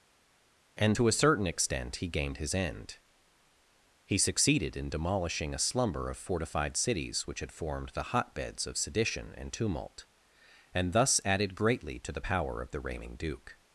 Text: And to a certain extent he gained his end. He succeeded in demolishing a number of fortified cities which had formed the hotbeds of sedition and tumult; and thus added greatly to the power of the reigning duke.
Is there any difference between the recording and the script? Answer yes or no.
yes